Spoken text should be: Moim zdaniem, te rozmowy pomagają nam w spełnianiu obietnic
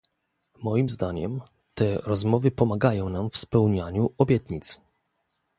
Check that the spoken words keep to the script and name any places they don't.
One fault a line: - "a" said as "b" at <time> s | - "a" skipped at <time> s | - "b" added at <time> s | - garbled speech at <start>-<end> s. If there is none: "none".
none